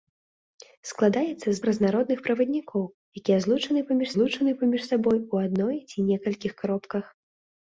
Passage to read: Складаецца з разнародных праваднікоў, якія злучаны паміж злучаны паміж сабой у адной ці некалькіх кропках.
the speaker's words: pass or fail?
pass